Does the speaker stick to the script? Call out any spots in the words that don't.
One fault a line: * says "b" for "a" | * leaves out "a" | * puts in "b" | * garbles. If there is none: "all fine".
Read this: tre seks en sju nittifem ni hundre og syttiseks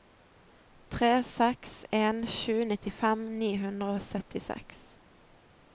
all fine